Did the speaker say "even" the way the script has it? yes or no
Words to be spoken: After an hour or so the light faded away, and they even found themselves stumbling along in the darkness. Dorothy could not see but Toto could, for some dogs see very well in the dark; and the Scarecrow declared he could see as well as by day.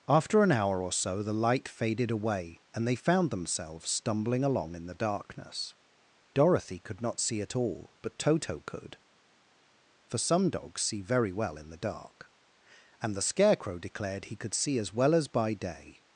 no